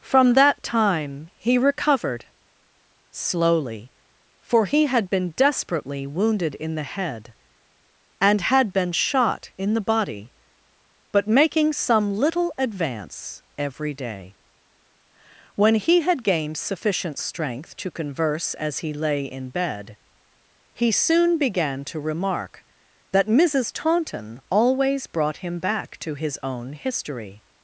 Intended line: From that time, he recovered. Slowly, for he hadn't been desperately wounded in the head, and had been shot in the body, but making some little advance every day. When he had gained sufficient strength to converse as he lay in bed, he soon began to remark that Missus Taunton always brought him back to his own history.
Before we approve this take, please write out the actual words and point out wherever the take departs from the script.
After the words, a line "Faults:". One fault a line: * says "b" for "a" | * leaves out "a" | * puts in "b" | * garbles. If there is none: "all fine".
From that time, he recovered. Slowly, for he had been desperately wounded in the head, and had been shot in the body, but making some little advance every day. When he had gained sufficient strength to converse as he lay in bed, he soon began to remark that Missus Taunton always brought him back to his own history.
Faults:
* says "had" for "hadn't"